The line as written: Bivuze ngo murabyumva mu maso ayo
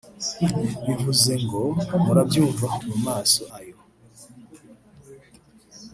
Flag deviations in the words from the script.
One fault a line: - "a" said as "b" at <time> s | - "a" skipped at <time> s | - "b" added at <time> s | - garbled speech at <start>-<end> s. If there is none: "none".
none